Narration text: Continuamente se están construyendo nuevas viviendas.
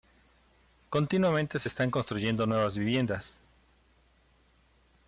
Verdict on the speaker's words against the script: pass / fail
pass